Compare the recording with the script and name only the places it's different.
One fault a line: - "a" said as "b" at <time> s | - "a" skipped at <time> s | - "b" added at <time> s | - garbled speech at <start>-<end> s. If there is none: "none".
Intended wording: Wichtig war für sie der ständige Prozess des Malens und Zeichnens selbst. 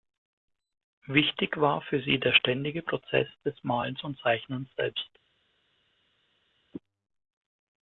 none